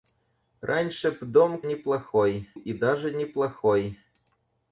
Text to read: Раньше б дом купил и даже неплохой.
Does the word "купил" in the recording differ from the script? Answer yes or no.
yes